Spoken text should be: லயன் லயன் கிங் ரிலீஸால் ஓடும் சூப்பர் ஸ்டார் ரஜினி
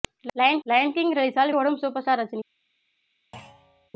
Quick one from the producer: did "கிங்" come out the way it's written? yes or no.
yes